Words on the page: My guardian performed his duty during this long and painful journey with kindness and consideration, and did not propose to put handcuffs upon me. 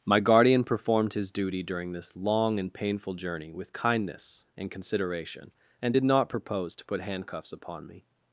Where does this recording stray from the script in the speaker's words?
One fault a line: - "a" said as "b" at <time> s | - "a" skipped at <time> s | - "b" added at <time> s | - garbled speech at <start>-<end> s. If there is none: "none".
none